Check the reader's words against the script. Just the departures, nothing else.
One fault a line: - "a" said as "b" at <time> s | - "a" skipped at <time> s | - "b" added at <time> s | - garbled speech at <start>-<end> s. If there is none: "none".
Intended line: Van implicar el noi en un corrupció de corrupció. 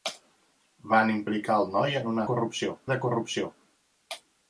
none